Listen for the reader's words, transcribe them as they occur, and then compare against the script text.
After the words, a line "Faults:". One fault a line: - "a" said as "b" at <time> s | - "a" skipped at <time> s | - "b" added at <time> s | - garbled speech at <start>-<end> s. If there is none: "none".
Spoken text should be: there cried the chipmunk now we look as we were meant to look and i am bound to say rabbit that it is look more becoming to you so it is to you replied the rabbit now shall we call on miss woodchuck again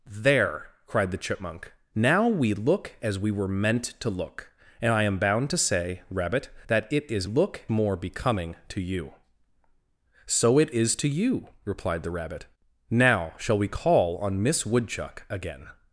there cried the chipmunk now we look as we were meant to look and i am bound to say rabbit that it is look more becoming to you so it is to you replied the rabbit now shall we call on miss woodchuck again
Faults:
none